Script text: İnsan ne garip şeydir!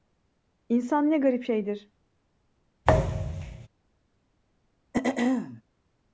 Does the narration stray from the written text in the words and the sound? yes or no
yes